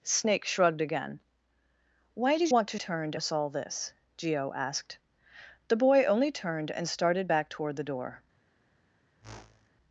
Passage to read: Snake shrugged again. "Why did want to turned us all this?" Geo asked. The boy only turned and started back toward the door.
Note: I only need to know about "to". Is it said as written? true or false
true